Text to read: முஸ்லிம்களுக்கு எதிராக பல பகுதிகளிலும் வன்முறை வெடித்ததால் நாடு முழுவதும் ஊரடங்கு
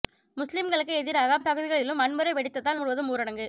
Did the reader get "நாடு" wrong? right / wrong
wrong